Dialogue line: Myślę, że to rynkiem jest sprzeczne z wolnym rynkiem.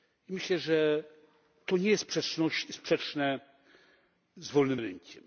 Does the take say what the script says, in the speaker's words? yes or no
no